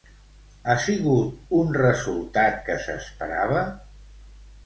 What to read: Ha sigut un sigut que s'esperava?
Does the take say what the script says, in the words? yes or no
no